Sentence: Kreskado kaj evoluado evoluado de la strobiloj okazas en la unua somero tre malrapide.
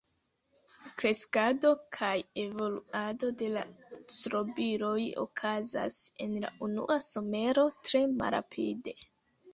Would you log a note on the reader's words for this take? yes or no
yes